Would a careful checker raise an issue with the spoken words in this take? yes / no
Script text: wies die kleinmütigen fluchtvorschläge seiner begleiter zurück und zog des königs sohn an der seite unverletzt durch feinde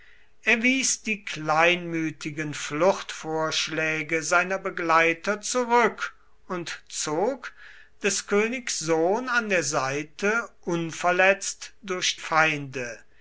no